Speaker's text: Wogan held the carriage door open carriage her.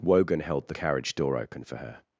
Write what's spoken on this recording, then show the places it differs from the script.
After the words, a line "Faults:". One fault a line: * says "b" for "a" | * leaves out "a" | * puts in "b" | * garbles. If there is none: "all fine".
Wogan held the carriage door open for her.
Faults:
* says "for" for "carriage"